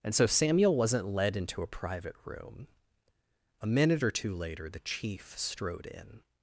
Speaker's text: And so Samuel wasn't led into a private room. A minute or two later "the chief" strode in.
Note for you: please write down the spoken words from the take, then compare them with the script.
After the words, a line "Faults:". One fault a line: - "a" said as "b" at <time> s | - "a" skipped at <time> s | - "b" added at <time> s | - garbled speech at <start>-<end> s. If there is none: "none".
And so Samuel wasn't led into a private room. A minute or two later "the chief" strode in.
Faults:
none